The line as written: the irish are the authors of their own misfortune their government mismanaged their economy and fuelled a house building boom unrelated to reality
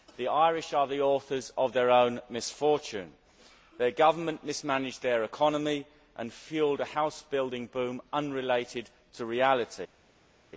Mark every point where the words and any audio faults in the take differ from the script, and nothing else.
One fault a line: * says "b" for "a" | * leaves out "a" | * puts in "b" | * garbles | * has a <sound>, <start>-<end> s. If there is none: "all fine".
all fine